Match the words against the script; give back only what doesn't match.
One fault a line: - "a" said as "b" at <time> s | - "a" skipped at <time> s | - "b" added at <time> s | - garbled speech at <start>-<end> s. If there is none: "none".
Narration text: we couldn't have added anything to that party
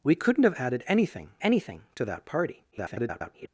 - "anything" added at 1.4 s
- garbled speech at 2.7-3.5 s